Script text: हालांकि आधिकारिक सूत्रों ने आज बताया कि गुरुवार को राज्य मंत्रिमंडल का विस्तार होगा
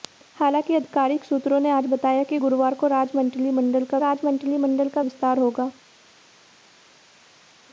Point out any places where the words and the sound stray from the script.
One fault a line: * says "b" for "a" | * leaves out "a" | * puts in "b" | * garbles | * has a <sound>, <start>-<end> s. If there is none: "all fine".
* puts in "राज्य मंत्रिमंडल का"